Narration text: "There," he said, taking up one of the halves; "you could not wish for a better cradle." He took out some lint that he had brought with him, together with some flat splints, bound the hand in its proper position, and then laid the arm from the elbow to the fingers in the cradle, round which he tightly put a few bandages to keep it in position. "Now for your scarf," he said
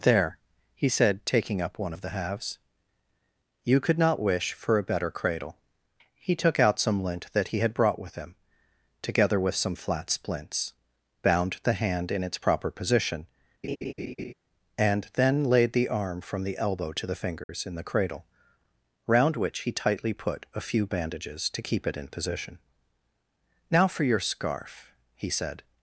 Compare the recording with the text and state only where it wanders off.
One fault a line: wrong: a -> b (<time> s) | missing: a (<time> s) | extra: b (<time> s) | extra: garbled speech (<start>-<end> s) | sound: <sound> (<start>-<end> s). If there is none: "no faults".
sound: laugh (13.6-14.3 s)
sound: dropout (17.4-17.5 s)